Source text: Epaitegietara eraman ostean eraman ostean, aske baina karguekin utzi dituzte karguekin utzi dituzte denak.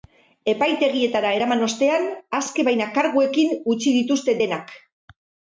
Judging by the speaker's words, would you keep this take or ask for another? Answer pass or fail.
fail